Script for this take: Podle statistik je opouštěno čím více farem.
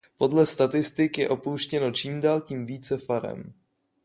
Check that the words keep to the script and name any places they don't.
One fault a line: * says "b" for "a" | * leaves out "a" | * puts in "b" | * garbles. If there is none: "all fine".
* puts in "dál tím"